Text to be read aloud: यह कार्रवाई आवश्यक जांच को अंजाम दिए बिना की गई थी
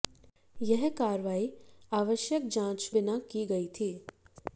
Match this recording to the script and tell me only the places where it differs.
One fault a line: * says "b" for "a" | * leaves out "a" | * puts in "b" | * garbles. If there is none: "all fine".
* leaves out "को अंजाम दिए"